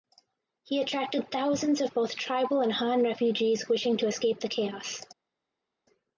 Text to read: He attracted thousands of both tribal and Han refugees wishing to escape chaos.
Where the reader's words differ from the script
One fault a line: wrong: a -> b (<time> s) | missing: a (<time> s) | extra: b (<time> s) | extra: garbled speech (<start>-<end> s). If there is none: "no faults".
extra: the (4.4 s)